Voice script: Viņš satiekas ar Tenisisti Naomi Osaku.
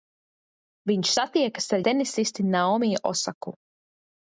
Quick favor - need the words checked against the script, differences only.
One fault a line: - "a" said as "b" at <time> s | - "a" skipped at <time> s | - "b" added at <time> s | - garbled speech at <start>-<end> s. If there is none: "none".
none